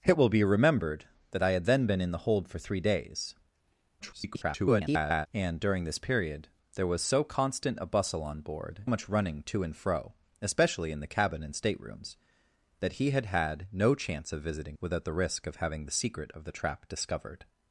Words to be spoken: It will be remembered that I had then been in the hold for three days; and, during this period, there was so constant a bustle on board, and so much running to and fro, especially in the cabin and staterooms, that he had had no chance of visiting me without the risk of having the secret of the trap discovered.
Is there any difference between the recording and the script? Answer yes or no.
yes